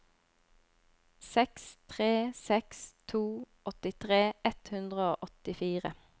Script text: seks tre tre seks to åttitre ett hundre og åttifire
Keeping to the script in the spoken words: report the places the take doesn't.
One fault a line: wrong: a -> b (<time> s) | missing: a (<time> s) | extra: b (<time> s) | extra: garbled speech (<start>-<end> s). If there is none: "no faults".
missing: tre (2.1 s)